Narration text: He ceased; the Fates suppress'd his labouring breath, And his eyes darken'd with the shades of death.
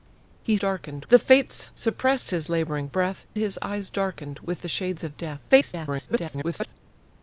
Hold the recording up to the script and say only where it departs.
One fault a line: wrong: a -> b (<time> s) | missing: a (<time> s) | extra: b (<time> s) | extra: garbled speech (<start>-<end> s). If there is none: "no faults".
wrong: ceased -> darken'd (0.6 s)
missing: And (3.3 s)
extra: garbled speech (5.5-6.7 s)